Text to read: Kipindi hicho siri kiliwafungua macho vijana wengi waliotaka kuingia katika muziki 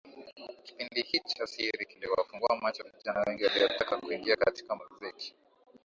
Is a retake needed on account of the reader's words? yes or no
no